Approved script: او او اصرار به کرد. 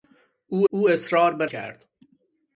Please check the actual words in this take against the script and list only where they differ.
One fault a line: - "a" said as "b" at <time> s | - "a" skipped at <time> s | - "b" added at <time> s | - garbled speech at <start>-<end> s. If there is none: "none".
none